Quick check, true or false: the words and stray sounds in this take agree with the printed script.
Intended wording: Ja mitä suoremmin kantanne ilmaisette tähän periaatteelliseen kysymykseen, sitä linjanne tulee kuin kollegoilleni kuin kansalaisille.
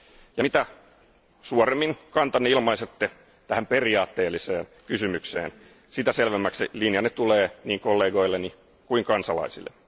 false